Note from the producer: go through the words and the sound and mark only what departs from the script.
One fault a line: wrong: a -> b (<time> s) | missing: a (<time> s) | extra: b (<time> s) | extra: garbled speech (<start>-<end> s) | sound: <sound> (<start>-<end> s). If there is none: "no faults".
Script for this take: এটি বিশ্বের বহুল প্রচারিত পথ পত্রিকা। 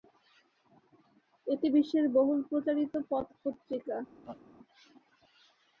sound: laugh (4.2-4.4 s)